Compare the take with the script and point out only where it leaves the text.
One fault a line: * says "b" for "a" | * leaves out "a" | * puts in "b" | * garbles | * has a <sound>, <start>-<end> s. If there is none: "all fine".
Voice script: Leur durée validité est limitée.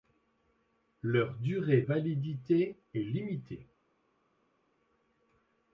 all fine